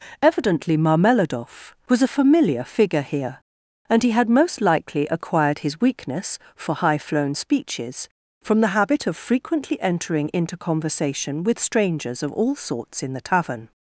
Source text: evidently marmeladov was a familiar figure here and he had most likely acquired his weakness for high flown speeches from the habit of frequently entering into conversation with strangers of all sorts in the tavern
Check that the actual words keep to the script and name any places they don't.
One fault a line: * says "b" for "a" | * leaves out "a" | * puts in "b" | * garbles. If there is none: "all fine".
all fine